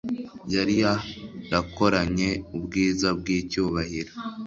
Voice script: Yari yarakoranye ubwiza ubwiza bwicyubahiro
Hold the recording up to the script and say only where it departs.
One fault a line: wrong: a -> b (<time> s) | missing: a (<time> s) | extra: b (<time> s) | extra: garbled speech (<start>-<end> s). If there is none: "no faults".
missing: ubwiza (3.1 s)